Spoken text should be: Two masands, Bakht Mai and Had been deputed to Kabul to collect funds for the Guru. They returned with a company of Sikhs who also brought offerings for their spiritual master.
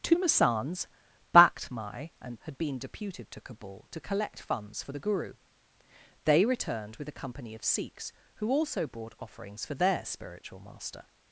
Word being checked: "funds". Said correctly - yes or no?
yes